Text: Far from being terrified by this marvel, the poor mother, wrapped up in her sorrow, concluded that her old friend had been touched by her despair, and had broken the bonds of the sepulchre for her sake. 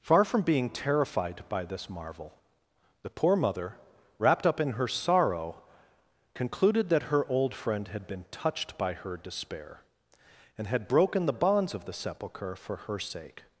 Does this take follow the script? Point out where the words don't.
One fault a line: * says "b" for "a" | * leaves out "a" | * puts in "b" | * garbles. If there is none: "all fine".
all fine